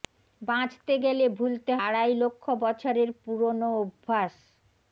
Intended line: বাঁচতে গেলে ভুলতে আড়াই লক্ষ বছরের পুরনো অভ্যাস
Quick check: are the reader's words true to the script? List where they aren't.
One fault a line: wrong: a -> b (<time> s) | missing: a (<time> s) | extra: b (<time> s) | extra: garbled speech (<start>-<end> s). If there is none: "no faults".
no faults